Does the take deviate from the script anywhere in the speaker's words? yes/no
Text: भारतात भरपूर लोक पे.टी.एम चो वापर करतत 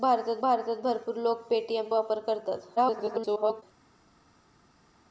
yes